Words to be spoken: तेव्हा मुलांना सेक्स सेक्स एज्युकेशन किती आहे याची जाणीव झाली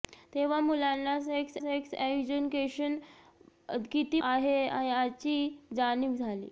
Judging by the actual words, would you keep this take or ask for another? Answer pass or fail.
pass